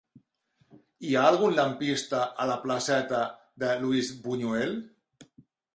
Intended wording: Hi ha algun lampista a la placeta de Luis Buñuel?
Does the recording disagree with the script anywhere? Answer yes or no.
no